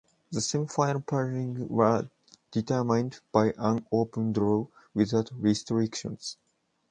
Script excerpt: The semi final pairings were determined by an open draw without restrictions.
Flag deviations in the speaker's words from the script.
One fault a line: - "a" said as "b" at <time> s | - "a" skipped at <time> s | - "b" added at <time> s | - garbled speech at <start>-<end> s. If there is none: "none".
none